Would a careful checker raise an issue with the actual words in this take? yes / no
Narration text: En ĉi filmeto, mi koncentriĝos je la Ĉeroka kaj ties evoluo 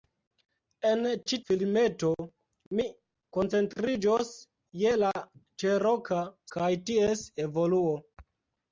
no